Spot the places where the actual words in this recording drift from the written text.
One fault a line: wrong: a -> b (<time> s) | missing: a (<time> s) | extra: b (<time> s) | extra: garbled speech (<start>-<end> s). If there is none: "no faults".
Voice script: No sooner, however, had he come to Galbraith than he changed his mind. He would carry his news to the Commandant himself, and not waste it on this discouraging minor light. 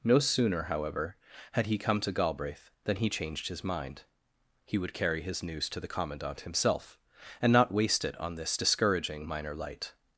no faults